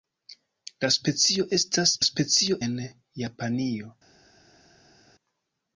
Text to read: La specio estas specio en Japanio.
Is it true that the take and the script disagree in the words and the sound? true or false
false